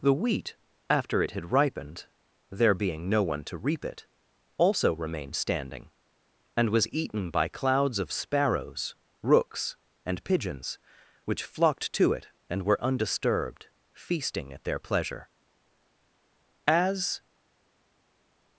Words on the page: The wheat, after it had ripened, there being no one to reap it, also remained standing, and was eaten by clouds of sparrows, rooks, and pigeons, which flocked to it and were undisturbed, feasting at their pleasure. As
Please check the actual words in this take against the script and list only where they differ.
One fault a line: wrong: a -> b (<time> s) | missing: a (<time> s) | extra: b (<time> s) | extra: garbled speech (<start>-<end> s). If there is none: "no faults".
no faults